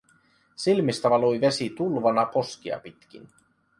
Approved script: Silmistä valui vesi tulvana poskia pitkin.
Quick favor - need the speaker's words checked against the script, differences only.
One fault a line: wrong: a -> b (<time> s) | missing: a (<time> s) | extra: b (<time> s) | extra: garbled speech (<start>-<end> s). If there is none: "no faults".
no faults